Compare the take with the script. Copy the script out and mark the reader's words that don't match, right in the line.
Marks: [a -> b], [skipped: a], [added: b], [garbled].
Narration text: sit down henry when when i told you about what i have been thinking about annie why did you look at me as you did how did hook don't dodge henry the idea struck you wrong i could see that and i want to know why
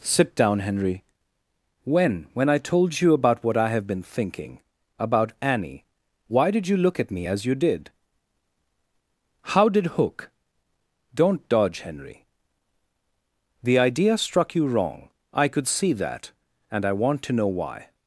sit down henry when when i told you about what i have been thinking about annie why did you look at me as you did how did hook don't dodge henry the idea struck you wrong i could see that and i want to know why